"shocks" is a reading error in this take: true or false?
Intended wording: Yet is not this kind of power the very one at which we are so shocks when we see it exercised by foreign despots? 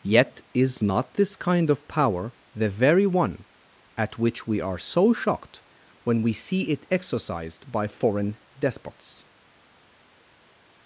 true